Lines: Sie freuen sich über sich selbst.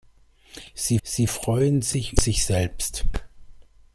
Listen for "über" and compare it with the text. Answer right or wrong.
wrong